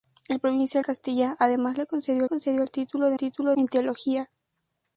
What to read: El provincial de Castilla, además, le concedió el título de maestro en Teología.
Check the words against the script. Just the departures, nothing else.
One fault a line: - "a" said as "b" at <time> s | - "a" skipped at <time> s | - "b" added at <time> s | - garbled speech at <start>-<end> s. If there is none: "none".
- "de" skipped at 0.8 s
- "concedió" added at 2.3 s
- "maestro" said as "título" at 3.2 s